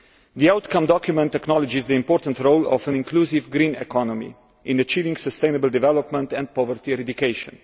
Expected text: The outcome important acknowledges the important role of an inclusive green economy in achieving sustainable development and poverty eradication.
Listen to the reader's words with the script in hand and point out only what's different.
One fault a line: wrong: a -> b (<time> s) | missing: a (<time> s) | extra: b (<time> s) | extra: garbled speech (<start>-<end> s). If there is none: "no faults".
wrong: important -> document (0.9 s)